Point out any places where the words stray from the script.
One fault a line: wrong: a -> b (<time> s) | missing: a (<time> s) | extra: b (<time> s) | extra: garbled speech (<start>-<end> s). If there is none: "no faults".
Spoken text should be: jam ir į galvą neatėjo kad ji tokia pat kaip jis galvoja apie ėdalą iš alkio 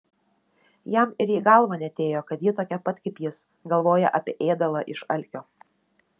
no faults